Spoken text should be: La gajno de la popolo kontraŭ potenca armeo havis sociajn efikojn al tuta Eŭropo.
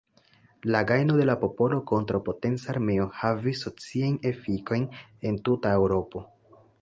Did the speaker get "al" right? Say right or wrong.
wrong